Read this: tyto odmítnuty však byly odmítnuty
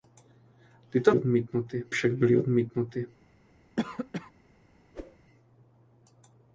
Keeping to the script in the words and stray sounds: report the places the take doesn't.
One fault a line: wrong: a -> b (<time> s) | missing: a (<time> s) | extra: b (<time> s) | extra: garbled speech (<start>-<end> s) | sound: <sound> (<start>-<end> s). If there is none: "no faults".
sound: cough (3.8-4.3 s)
sound: whoosh (4.9-5.2 s)